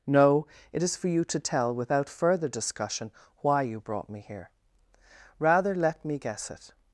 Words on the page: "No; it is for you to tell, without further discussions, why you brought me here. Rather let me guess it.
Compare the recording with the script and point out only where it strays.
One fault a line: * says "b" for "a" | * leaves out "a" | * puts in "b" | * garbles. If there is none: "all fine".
* says "discussion" for "discussions"